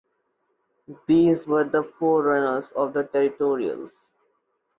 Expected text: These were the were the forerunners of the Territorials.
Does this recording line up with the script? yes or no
no